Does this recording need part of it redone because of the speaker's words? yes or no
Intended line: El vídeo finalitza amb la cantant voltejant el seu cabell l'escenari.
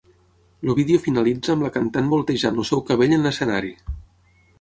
yes